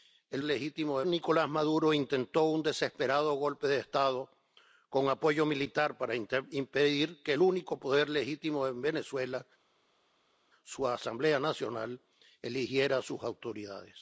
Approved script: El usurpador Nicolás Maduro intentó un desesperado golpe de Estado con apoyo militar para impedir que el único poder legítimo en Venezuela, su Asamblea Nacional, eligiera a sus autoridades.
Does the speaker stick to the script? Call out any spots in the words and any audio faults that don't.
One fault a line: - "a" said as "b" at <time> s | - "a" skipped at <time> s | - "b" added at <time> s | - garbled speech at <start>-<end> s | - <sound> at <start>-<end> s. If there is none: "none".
- "usurpador" said as "legítimo" at 0.4 s